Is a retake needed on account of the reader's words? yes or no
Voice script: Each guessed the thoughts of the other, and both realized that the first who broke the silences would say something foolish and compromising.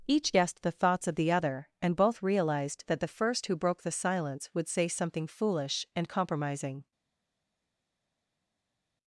yes